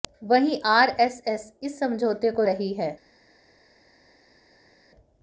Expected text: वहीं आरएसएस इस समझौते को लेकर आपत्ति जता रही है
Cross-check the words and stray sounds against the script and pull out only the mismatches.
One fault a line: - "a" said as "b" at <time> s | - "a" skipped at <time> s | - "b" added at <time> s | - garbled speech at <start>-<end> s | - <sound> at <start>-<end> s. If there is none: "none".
- "लेकर आपत्ति जता" skipped at 2.4 s